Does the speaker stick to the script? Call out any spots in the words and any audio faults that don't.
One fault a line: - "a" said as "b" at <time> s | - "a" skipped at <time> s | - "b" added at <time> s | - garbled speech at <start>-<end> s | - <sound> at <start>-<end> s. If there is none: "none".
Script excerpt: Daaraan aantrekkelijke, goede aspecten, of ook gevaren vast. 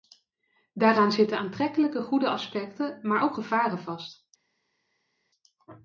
- "zitten" added at 1.1 s
- "of" said as "maar" at 3.0 s